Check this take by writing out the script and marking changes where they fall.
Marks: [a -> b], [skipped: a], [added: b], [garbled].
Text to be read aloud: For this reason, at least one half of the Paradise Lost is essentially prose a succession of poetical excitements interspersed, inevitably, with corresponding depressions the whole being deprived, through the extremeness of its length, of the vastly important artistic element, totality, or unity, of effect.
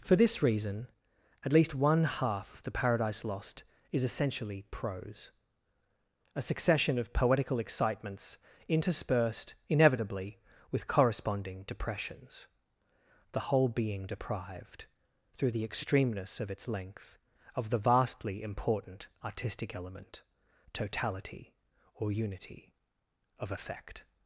For this reason, at least one half of the Paradise Lost is essentially prose a succession of poetical excitements interspersed, inevitably, with corresponding depressions the whole being deprived, through the extremeness of its length, of the vastly important artistic element, totality, or unity, of effect.